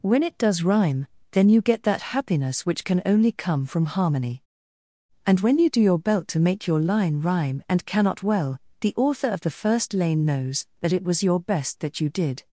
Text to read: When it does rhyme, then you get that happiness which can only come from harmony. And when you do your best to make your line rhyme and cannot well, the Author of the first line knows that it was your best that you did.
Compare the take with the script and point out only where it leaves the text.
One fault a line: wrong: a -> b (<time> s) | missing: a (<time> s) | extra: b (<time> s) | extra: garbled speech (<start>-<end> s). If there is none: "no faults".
wrong: best -> belt (6.0 s)
wrong: line -> lane (9.9 s)